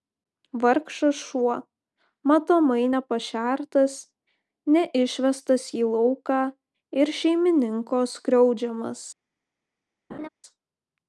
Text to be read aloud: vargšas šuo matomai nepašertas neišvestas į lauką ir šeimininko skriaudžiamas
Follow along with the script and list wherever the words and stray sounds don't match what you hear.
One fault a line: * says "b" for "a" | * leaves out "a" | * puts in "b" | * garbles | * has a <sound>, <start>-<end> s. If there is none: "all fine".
* has a laugh, 10.1-10.3 s